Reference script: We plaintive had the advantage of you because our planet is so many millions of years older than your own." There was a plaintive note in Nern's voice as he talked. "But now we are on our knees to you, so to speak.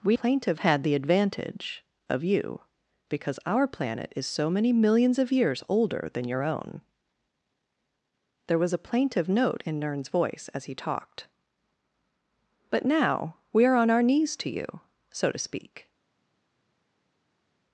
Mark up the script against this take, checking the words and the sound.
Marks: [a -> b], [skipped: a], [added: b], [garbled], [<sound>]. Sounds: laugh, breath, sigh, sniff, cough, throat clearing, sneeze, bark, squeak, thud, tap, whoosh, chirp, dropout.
We plaintive had the advantage of you because our planet is so many millions of years older than your own." There was a plaintive note in Nern's voice as he talked. "But now we are on our knees to you, so to speak.